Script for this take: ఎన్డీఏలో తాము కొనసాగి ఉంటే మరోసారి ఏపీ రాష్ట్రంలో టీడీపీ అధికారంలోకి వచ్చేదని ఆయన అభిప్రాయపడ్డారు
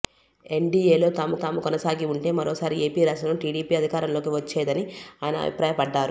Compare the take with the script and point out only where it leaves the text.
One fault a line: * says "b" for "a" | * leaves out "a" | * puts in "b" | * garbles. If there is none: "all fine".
* puts in "తాము"